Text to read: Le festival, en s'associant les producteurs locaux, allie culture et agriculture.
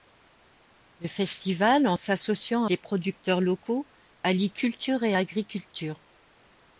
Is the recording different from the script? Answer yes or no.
no